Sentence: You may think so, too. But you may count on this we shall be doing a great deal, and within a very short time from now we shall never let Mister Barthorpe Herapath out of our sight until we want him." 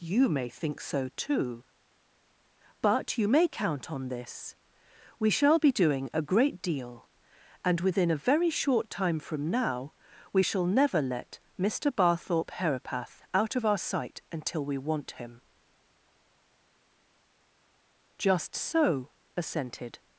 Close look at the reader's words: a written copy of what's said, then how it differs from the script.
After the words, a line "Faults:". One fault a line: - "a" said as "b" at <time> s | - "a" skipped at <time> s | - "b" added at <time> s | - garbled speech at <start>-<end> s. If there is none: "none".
You may think so, too. But you may count on this we shall be doing a great deal, and within a very short time from now we shall never let Mister Barthorpe Herapath out of our sight until we want him." "Just so," assented
Faults:
- "Just so assented" added at 18.2 s